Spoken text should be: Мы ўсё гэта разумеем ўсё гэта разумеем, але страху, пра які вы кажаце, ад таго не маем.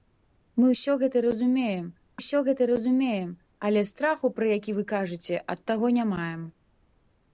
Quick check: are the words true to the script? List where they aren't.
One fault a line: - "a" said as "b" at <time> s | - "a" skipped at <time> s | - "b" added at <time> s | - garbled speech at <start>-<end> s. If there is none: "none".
none